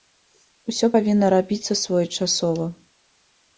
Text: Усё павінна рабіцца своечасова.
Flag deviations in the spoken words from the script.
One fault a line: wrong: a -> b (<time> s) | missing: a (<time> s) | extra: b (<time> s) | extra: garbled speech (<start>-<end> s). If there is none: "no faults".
no faults